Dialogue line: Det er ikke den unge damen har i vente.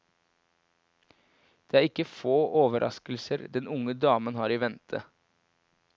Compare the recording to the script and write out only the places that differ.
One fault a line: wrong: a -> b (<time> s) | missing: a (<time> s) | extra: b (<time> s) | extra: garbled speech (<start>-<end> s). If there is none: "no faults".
extra: få overraskelser (2.1 s)